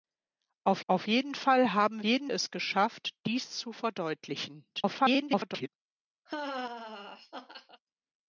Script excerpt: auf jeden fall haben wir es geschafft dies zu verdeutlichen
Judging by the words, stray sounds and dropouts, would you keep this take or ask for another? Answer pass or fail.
fail